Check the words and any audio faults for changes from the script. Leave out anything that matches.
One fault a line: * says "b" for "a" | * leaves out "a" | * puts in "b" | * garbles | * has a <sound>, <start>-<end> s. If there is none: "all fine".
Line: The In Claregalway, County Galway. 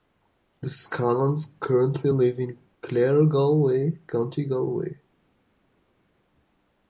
* puts in "Scallons currently live"